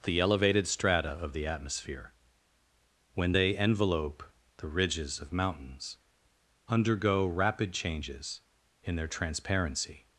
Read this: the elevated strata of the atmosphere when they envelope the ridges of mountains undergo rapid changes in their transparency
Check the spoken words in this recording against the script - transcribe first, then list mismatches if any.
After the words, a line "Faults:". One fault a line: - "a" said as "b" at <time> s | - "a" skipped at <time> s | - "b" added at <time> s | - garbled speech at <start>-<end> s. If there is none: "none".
the elevated strata of the atmosphere when they envelope the ridges of mountains undergo rapid changes in their transparency
Faults:
none